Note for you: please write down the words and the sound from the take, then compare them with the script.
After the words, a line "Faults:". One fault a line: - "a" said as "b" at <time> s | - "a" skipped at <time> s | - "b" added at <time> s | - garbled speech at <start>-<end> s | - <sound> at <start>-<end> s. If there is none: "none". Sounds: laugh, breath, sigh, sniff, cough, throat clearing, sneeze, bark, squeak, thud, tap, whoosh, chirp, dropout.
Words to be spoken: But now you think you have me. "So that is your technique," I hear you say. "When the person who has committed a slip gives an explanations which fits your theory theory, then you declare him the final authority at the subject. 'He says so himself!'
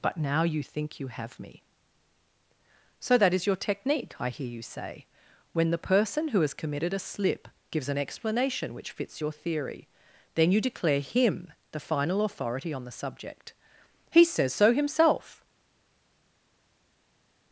But now you think you have me. "So that is your technique," I hear you say. "When the person who has committed a slip gives an explanation which fits your theory, then you declare him the final authority on the subject. 'He says so himself!'
Faults:
- "explanations" said as "explanation" at 8.0 s
- "theory" skipped at 9.9 s
- "at" said as "on" at 12.7 s